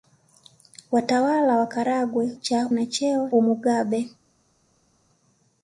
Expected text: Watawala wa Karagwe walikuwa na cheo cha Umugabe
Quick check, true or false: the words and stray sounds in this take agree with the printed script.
false